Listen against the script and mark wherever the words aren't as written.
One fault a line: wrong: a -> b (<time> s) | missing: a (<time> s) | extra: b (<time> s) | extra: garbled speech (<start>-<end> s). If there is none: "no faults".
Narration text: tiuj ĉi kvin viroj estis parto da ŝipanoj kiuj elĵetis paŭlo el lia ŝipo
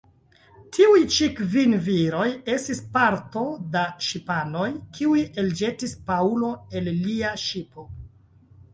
no faults